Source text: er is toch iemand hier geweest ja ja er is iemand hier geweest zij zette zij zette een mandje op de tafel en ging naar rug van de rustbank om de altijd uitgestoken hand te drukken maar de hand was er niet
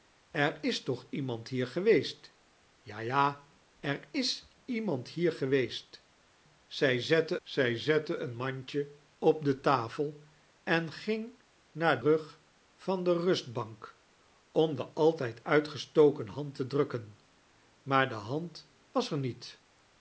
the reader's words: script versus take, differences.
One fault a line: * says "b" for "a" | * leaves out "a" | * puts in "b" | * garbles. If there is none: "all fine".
all fine